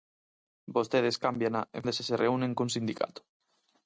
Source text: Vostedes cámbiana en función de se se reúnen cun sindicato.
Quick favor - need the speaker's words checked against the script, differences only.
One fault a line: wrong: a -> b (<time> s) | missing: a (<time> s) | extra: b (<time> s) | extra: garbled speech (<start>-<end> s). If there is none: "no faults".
missing: función (1.8 s)